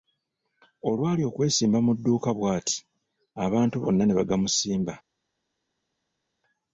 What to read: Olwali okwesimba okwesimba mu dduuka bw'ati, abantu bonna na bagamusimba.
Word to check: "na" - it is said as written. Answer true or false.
false